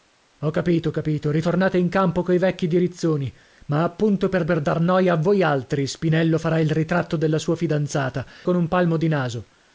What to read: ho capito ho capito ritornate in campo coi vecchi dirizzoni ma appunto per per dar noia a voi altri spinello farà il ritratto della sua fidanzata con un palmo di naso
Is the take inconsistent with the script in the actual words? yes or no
no